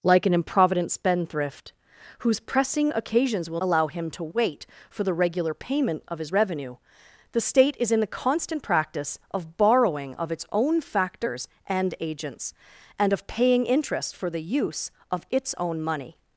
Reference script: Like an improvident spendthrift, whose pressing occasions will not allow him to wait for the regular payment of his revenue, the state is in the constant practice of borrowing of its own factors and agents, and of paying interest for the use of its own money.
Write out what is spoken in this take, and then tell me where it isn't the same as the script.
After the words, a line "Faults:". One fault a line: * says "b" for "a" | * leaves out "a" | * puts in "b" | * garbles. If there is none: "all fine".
Like an improvident spendthrift, whose pressing occasions will allow him to wait for the regular payment of his revenue, the state is in the constant practice of borrowing of its own factors and agents, and of paying interest for the use of its own money.
Faults:
* leaves out "not"